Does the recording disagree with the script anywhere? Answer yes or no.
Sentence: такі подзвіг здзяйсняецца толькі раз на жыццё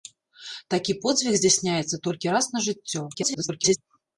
yes